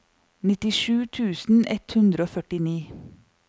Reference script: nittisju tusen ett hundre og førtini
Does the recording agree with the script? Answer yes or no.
yes